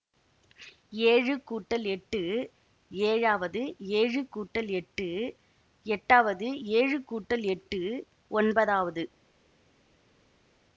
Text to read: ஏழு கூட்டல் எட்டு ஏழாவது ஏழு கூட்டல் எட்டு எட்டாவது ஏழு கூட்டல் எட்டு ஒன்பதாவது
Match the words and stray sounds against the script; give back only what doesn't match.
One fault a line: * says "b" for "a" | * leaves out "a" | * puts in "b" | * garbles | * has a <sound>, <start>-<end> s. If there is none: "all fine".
all fine